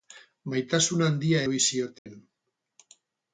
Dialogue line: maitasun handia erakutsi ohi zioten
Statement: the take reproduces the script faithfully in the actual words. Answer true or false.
false